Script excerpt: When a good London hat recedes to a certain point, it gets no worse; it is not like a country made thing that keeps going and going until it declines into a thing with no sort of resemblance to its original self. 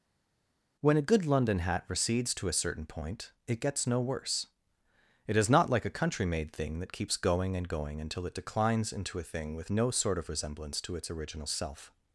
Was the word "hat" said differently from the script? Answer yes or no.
no